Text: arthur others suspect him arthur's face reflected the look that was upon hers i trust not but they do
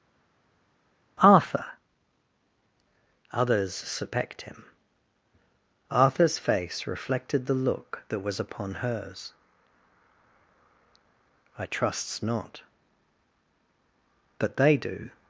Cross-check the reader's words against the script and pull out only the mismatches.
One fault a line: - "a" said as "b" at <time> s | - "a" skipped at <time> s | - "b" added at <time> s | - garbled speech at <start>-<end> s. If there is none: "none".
- "trust" said as "trusts" at 11.7 s